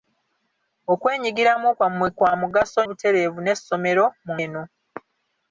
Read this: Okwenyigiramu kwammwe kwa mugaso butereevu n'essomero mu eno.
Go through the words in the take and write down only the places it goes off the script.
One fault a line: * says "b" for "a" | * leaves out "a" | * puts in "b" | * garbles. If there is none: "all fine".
all fine